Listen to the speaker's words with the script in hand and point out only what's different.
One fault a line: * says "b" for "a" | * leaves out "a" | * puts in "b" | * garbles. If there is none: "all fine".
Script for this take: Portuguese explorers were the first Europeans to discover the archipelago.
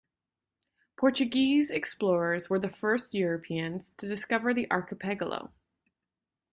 all fine